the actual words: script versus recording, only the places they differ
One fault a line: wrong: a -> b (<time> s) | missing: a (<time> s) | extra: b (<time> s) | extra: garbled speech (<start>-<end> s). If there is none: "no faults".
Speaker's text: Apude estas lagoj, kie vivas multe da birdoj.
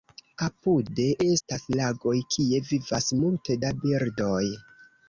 no faults